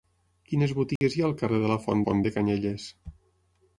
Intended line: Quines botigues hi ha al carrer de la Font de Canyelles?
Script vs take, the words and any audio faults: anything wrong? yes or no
yes